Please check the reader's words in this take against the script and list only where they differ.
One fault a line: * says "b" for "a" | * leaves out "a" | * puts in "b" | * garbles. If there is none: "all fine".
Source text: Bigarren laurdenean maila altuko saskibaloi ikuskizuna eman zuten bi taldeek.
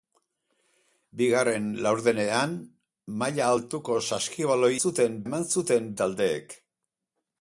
* says "zuten" for "ikuskizuna"
* leaves out "bi"